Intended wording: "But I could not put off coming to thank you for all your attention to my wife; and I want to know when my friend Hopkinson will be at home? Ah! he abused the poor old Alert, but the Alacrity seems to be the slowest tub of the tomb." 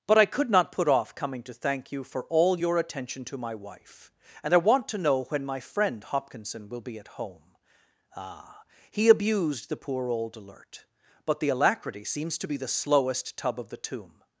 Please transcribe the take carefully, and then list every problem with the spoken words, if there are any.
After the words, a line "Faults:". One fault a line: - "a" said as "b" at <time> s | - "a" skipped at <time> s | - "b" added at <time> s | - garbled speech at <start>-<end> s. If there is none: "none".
"But I could not put off coming to thank you for all your attention to my wife; and I want to know when my friend Hopkinson will be at home? Ah! he abused the poor old Alert, but the Alacrity seems to be the slowest tub of the tomb."
Faults:
none